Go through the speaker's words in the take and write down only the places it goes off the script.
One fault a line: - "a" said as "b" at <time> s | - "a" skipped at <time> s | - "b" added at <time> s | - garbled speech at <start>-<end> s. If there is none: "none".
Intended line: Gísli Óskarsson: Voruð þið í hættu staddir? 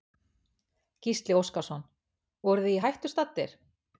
none